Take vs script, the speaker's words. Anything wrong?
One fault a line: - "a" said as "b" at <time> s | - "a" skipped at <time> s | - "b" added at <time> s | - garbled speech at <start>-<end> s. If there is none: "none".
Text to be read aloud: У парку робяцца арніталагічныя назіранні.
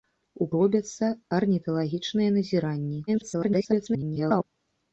- "парку" skipped at 0.5 s
- garbled speech at 3.1-4.4 s